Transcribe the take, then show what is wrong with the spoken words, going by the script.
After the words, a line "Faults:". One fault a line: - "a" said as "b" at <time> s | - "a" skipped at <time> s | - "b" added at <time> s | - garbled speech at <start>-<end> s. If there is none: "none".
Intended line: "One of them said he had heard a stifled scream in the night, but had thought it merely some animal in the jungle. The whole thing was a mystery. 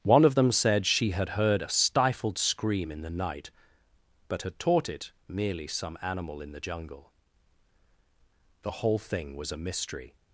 "One of them said she had heard a stifled scream in the night, but had taught it merely some animal in the jungle. The whole thing was a mystery.
Faults:
- "he" said as "she" at 0.9 s
- "thought" said as "taught" at 4.6 s